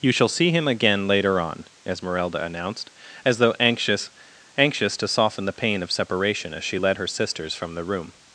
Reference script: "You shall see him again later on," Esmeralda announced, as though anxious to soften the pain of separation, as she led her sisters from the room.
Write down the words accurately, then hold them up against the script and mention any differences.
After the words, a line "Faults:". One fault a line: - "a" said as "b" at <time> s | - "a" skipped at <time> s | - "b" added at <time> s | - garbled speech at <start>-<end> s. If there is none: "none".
"You shall see him again later on," Esmeralda announced, as though anxious anxious to soften the pain of separation, as she led her sisters from the room.
Faults:
- "anxious" added at 4.6 s